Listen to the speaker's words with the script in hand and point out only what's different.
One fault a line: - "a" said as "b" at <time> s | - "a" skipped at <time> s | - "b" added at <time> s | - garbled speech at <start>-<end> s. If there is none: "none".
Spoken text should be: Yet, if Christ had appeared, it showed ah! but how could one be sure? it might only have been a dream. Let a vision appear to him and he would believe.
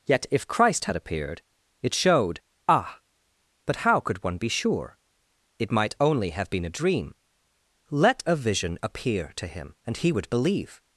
none